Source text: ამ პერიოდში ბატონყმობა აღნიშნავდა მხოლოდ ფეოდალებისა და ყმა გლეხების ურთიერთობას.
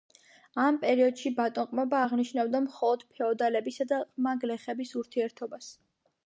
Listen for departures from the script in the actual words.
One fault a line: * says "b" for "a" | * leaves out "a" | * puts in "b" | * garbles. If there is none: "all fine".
all fine